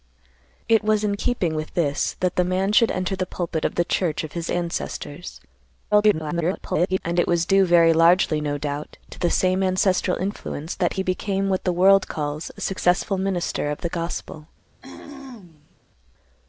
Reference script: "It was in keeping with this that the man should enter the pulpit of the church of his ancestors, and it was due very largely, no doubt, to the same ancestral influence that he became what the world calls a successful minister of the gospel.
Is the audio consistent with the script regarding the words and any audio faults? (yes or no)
no